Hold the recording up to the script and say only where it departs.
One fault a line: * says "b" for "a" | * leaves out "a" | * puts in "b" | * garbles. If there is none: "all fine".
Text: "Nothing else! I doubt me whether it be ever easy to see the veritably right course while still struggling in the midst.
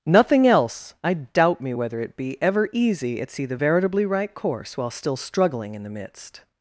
* says "at" for "to"